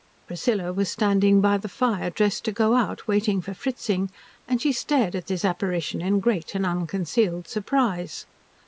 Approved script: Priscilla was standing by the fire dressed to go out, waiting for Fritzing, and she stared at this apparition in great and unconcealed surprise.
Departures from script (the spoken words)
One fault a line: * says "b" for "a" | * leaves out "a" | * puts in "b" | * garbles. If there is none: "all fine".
all fine